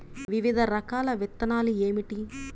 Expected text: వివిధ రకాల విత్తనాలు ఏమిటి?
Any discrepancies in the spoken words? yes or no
no